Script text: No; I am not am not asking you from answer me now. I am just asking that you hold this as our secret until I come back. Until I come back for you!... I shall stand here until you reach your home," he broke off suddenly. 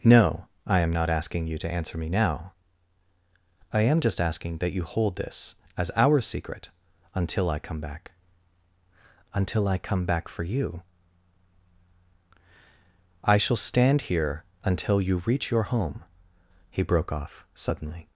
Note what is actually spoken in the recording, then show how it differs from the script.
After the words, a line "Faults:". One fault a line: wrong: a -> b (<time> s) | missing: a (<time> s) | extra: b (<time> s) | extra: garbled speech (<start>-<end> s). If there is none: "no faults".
No; I am not asking you to answer me now. I am just asking that you hold this as our secret until I come back. Until I come back for you!... I shall stand here until you reach your home," he broke off suddenly.
Faults:
missing: am not (1.1 s)
wrong: from -> to (1.6 s)